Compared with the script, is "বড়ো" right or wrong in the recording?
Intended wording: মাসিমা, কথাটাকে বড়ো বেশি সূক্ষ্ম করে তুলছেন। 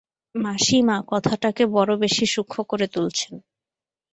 right